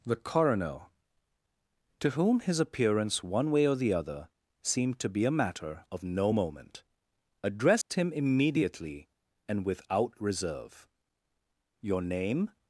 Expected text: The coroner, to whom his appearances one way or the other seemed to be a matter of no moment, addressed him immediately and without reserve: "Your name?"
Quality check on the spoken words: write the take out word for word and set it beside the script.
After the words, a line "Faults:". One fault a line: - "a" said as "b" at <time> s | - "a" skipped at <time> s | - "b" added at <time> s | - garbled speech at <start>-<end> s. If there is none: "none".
The coroner, to whom his appearance one way or the other seemed to be a matter of no moment, addressed him immediately and without reserve: "Your name?"
Faults:
- "appearances" said as "appearance" at 2.6 s